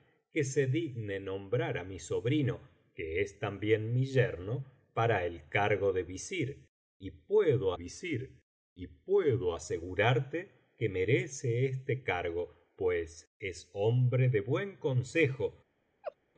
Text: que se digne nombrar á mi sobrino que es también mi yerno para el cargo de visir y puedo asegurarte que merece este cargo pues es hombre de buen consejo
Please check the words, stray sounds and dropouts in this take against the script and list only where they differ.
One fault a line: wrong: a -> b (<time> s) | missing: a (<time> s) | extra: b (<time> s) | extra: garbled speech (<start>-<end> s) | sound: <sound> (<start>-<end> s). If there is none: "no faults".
extra: visir y puedo (7.7 s)
sound: laugh (16.0-16.2 s)